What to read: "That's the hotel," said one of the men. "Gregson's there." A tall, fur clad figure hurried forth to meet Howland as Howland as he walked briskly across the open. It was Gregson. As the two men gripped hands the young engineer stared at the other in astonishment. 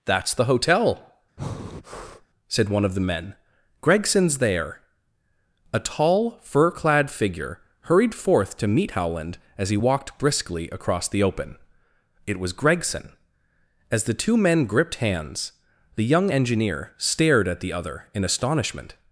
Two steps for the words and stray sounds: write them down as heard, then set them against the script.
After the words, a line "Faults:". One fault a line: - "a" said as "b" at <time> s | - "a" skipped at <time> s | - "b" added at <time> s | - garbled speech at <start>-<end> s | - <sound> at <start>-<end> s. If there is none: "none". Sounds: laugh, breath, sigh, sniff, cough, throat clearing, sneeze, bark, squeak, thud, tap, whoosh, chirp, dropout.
"That's the hotel," said one of the men. "Gregson's there." A tall, fur clad figure hurried forth to meet Howland as he walked briskly across the open. It was Gregson. As the two men gripped hands the young engineer stared at the other in astonishment.
Faults:
- breath at 1.4-2.3 s
- "Howland as" skipped at 9.7 s